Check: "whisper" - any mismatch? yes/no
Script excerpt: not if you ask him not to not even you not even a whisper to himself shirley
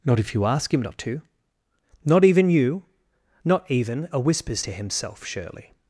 yes